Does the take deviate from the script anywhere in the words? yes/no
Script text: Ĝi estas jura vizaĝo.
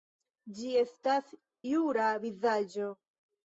no